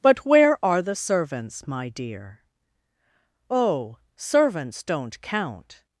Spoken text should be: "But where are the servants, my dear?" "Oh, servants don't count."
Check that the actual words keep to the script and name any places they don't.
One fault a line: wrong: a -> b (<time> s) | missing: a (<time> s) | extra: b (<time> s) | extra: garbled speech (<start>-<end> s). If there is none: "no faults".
no faults